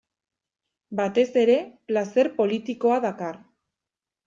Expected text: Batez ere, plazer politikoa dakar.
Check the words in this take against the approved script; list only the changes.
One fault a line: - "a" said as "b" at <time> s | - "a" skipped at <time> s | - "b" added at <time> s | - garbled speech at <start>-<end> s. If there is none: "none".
none